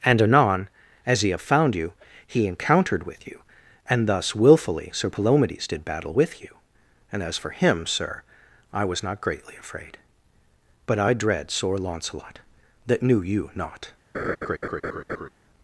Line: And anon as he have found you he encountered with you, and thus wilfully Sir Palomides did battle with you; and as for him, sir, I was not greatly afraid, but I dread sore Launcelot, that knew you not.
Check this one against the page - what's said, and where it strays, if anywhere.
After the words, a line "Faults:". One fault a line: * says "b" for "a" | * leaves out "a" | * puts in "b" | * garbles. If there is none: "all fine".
And anon as he have found you he encountered with you, and thus wilfully Sir Palomides did battle with you; and as for him, sir, I was not greatly afraid, but I dread sore Launcelot, that knew you not.
Faults:
all fine